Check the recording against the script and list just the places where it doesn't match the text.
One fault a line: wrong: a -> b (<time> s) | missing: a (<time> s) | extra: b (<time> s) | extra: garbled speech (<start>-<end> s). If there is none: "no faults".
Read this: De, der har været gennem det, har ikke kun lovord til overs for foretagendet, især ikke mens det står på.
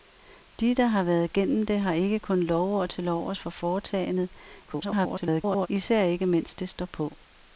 extra: garbled speech (4.7-5.7 s)